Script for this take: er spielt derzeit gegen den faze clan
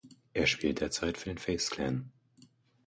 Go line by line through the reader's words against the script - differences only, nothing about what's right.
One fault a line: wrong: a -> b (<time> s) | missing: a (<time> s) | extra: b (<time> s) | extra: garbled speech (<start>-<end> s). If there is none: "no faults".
wrong: gegen -> für (1.1 s)